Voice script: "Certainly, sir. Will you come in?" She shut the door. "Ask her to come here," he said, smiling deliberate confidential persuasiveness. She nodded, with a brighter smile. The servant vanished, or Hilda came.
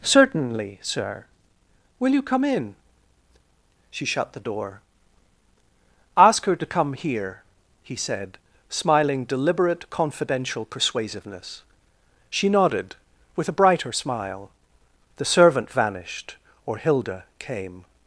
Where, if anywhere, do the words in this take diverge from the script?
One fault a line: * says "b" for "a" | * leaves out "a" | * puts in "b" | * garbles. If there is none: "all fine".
all fine